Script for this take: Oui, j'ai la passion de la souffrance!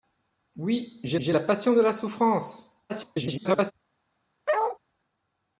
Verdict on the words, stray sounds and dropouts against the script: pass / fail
fail